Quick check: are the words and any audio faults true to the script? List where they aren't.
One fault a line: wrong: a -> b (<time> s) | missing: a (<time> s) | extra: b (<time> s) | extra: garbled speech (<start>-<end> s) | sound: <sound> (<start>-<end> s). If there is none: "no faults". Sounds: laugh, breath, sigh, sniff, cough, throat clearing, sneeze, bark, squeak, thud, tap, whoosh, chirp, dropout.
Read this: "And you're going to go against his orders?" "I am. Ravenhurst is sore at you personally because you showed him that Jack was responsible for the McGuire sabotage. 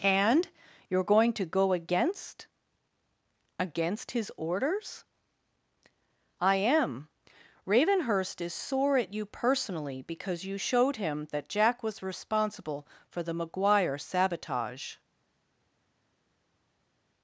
extra: against (3.6 s)